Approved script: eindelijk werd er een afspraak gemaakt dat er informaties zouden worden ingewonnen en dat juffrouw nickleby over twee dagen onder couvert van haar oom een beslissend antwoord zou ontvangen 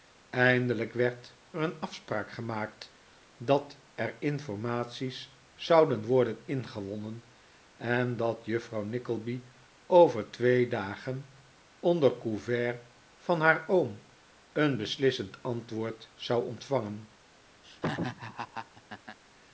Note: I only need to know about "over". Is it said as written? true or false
true